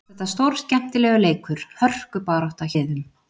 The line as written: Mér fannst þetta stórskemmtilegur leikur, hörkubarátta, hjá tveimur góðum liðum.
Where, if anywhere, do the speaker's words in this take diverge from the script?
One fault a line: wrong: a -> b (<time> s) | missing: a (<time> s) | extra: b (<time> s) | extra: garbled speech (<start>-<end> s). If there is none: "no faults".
missing: hjá tveimur góðum (2.7 s)